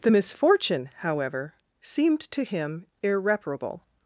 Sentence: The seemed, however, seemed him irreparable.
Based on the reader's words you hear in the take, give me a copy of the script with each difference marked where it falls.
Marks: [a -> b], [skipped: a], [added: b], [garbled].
The [seemed, -> misfortune] however, seemed [added: to] him irreparable.